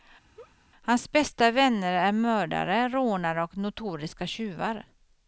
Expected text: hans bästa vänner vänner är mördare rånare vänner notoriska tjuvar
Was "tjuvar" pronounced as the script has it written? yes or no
yes